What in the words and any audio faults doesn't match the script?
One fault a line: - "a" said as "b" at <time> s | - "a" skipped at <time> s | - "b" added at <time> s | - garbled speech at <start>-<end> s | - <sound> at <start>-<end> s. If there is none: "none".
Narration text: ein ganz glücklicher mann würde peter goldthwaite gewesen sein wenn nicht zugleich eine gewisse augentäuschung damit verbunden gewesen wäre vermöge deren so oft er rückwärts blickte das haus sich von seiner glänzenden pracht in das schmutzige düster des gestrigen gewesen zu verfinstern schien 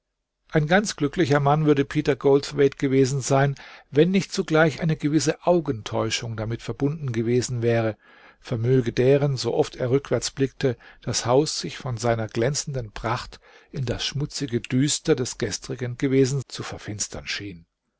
none